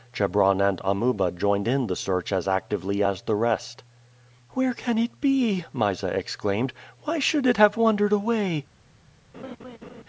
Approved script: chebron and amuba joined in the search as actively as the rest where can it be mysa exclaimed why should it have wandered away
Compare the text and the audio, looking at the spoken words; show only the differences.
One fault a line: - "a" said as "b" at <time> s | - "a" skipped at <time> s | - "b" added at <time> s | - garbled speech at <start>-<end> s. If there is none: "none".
none